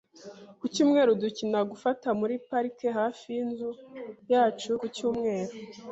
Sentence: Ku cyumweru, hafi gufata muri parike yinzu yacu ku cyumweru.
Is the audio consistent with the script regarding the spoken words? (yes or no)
no